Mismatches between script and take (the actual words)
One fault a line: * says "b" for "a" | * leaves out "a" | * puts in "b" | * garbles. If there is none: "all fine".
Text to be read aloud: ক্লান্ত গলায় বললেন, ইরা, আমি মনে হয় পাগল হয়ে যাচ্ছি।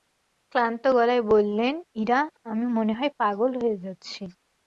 all fine